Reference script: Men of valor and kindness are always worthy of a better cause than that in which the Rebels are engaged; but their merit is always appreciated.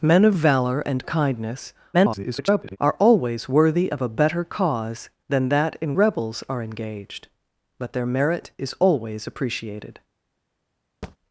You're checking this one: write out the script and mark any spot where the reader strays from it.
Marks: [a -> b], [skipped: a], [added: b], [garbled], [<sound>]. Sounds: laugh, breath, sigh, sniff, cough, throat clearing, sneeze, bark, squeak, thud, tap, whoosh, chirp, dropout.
Men of valor and kindness [garbled] are always worthy of a better cause than that in [skipped: which the] Rebels are engaged; but their merit is always appreciated. [thud]